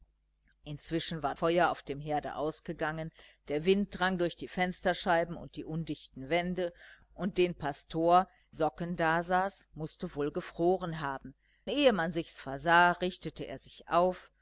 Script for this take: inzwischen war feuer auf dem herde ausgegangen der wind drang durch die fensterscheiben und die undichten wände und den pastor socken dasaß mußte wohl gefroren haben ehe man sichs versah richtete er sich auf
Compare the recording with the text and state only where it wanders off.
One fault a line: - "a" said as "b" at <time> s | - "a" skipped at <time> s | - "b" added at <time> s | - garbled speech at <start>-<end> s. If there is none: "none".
none